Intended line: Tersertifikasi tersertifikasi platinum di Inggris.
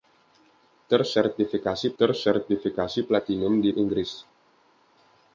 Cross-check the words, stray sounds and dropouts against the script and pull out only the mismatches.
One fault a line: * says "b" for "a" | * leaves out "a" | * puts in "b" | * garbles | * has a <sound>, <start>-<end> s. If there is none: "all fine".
all fine